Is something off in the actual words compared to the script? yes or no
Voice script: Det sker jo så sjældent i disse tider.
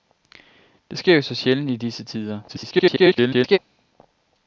yes